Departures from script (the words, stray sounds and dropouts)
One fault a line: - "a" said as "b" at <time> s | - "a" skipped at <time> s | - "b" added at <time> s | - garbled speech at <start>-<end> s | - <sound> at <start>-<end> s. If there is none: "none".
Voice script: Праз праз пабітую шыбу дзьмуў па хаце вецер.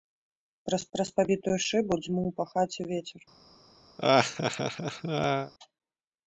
- laugh at 4.0-5.5 s